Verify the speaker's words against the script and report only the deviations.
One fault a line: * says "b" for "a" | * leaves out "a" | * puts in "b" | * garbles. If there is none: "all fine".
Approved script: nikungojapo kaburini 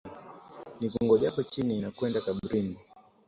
* puts in "chini nakwenda"